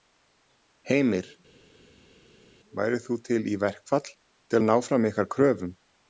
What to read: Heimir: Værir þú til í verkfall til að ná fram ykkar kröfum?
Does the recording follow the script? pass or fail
pass